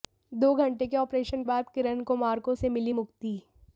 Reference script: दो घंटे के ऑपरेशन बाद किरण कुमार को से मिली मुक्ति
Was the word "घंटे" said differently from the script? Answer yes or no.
no